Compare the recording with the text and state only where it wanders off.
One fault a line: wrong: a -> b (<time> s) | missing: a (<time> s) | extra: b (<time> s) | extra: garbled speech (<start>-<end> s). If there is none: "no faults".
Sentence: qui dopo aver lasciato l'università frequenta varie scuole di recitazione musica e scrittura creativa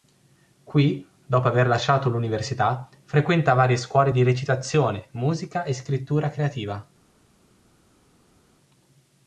no faults